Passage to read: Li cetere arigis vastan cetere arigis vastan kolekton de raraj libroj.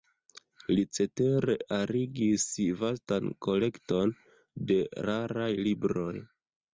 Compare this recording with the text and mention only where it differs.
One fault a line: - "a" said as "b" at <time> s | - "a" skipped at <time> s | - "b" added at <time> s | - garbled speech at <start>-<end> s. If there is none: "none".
- "cetere arigis vastan" skipped at 3.3 s